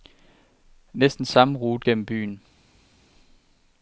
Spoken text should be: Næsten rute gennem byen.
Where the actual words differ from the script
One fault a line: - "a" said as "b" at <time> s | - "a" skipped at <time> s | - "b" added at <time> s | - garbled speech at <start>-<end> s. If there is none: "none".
- "samme" added at 1.2 s